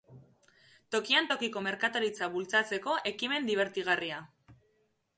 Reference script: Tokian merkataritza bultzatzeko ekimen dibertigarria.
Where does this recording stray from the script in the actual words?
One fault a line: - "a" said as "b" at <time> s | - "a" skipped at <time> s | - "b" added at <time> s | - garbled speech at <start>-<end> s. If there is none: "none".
- "tokiko" added at 1.3 s